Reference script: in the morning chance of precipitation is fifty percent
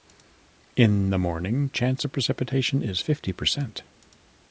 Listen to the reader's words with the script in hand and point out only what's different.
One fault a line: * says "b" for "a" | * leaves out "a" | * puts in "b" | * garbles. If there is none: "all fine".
all fine